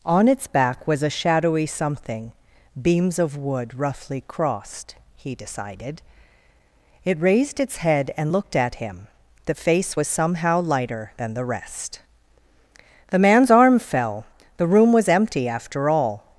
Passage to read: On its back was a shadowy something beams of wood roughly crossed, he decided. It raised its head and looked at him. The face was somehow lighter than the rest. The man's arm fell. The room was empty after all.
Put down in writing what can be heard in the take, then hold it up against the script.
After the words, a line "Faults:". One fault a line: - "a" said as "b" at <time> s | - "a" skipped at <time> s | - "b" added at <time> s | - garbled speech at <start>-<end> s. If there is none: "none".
On its back was a shadowy something beams of wood roughly crossed, he decided. It raised its head and looked at him. The face was somehow lighter than the rest. The man's arm fell. The room was empty after all.
Faults:
none